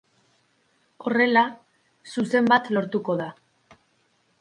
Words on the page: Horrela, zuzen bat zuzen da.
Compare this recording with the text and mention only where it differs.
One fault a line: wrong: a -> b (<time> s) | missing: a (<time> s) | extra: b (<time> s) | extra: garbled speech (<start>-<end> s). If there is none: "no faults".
wrong: zuzen -> lortuko (2.8 s)